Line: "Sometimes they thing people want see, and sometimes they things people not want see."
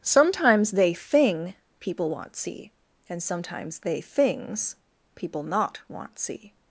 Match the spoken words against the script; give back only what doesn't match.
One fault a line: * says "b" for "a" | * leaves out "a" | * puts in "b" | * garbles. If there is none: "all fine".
all fine